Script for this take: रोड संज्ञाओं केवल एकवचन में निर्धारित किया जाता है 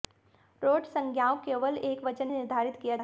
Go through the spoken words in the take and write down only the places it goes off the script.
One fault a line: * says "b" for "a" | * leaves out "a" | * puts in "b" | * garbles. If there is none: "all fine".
* leaves out "में"
* leaves out "जाता"